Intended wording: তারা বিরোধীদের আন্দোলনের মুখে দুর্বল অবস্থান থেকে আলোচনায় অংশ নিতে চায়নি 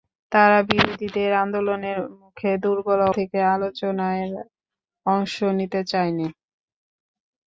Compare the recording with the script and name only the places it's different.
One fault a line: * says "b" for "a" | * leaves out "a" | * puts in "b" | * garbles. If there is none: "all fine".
* leaves out "অবস্থান"